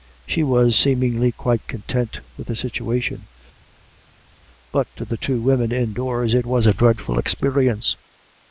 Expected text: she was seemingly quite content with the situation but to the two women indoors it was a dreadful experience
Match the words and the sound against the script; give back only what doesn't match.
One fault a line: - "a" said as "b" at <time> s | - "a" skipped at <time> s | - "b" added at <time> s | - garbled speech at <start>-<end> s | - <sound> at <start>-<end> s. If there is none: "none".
none